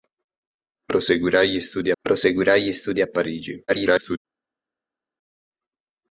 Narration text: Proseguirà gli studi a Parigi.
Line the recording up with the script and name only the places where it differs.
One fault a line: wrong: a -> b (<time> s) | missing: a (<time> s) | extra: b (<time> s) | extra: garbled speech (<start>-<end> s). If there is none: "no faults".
extra: proseguirà gli studi (2.0 s)
extra: garbled speech (3.7-4.2 s)